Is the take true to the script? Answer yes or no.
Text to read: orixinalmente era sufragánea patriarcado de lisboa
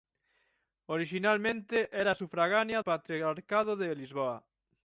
yes